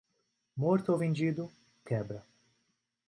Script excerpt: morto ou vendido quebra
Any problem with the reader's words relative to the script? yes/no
no